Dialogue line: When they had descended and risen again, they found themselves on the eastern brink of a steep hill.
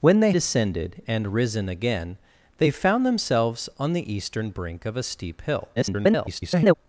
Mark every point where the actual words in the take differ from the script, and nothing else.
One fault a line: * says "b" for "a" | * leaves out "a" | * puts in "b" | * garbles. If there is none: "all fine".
* leaves out "had"
* garbles